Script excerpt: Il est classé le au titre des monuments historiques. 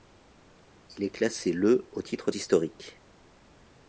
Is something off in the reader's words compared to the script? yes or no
yes